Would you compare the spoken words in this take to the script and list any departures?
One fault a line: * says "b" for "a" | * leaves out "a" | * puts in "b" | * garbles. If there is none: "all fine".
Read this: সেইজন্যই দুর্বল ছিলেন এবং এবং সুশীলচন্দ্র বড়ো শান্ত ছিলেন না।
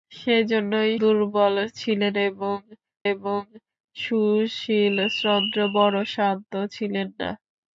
all fine